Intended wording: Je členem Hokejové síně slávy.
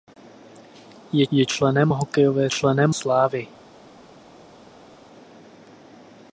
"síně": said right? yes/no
no